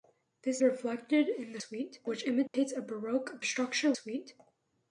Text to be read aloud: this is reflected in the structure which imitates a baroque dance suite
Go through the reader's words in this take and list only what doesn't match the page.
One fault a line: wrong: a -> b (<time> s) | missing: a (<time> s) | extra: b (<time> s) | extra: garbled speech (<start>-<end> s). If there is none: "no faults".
missing: is (0.6 s)
wrong: structure -> suite (1.6 s)
wrong: dance -> structure (3.4 s)